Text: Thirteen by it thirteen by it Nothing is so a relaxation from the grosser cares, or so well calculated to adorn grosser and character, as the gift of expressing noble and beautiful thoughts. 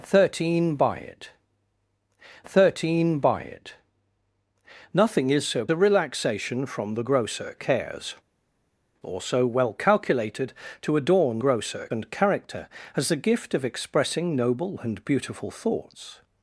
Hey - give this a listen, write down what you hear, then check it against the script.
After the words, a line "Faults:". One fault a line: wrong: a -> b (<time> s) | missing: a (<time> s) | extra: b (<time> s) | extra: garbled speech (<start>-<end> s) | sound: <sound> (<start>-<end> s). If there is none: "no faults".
Thirteen by it thirteen by it Nothing is so a relaxation from the grosser cares, or so well calculated to adorn grosser and character, as the gift of expressing noble and beautiful thoughts.
Faults:
no faults